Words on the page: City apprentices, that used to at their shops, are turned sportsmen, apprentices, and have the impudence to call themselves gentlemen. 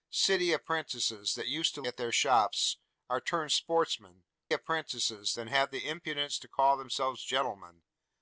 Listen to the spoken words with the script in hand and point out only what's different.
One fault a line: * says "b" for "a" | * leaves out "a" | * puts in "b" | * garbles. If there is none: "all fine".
all fine